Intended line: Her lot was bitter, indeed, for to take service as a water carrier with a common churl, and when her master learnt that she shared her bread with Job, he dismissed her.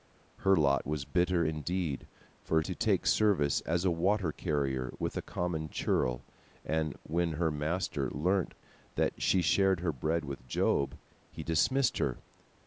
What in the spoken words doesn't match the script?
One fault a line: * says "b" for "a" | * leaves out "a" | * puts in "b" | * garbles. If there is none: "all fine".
all fine